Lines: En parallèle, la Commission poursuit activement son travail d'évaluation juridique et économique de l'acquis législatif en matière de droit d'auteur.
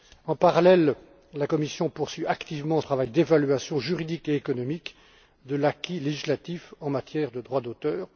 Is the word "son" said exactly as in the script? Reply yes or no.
no